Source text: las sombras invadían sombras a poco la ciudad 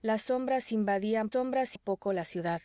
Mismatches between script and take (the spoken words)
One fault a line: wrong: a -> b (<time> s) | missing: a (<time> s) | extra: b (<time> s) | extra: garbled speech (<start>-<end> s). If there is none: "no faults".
no faults